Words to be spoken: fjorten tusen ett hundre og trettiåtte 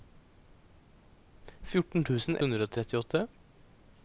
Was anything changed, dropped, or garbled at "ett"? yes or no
yes